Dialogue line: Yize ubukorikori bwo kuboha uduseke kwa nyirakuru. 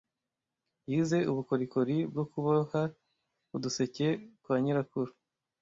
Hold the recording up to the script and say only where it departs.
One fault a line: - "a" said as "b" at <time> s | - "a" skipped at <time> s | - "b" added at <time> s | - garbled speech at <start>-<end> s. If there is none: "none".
none